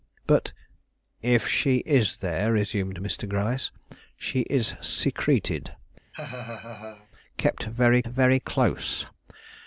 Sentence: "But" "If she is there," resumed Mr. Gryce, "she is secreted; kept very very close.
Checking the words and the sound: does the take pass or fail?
fail